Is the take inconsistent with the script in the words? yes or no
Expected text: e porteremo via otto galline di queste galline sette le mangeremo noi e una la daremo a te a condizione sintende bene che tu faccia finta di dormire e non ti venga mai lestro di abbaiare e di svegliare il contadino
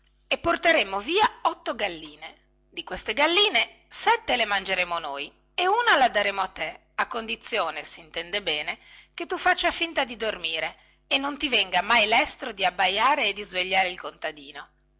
no